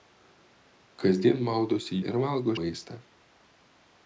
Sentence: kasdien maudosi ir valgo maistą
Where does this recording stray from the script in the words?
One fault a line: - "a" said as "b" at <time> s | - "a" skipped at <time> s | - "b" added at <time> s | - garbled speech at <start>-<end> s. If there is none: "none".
none